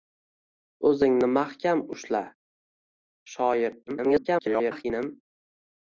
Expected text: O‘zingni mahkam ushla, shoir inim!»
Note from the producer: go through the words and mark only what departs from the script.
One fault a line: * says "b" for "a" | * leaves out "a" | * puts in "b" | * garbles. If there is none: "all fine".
* garbles